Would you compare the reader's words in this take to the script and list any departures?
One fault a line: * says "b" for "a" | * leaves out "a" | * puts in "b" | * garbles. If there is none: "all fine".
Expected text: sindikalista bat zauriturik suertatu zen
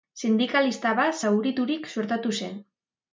all fine